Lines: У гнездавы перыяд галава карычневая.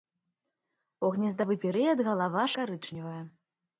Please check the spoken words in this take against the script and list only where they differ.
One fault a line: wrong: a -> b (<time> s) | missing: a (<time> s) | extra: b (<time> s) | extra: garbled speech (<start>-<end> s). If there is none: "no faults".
no faults